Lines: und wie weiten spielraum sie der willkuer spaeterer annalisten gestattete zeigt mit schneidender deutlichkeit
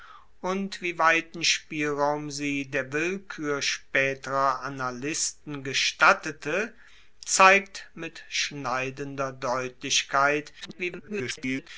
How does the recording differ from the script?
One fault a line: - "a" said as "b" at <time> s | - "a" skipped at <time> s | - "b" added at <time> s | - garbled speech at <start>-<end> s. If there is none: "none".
- garbled speech at 10.6-11.7 s